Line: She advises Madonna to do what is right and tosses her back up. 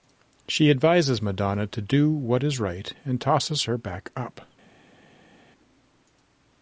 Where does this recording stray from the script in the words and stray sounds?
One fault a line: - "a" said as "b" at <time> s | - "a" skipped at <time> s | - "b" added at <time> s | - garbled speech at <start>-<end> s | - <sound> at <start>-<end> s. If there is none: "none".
none